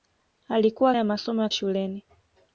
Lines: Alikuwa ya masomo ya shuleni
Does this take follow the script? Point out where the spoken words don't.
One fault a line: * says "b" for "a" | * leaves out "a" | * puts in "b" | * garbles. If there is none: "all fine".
all fine